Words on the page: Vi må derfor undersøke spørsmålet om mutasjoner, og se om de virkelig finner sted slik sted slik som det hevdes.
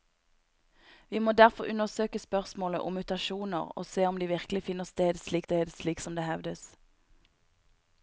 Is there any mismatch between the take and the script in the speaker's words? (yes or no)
no